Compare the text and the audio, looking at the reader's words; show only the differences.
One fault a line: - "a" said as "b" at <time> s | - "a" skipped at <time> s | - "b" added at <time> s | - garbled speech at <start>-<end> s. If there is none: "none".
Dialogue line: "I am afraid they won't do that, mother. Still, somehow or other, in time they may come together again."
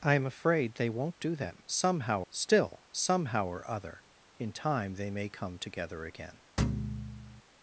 - "mother" said as "somehow" at 1.7 s